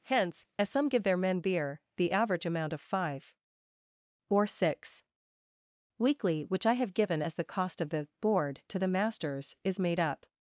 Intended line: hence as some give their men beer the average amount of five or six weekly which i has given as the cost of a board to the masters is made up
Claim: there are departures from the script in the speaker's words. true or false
true